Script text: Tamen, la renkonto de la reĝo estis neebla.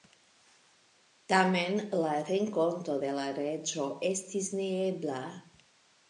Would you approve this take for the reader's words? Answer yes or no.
yes